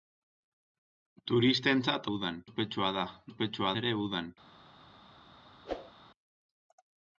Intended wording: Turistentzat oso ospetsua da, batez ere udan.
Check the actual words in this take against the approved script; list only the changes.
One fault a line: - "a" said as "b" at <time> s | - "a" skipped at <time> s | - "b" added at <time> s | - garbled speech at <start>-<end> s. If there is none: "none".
- "oso" said as "udan" at 2.1 s
- "batez" said as "ospetsua" at 3.3 s